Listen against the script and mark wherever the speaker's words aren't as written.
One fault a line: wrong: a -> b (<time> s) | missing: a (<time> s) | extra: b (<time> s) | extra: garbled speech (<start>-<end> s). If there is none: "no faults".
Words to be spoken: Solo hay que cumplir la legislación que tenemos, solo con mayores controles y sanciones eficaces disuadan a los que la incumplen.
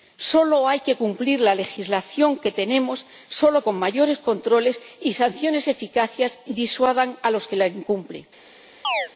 no faults